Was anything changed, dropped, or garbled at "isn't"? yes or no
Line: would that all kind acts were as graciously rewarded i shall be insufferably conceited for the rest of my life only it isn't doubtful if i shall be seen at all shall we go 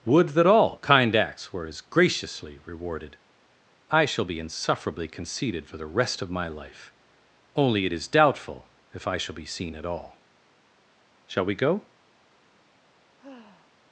yes